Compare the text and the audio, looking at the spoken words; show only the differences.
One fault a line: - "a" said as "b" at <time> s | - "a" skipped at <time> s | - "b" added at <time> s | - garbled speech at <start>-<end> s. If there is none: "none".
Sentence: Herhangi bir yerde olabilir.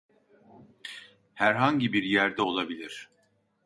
none